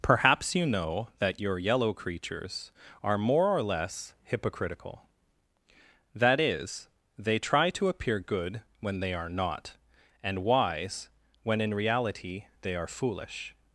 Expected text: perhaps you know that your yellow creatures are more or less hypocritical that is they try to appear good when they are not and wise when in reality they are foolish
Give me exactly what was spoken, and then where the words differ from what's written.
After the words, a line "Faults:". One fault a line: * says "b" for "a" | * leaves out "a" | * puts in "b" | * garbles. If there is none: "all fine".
perhaps you know that your yellow creatures are more or less hypocritical that is they try to appear good when they are not and wise when in reality they are foolish
Faults:
all fine